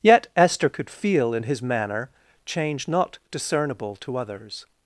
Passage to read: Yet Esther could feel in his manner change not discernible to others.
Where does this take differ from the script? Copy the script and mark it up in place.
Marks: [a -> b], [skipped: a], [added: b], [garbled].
Yet Esther could feel in his manner change not discernible to others.